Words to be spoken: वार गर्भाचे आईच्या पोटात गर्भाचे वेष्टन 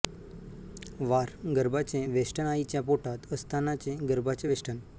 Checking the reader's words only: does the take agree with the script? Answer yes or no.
no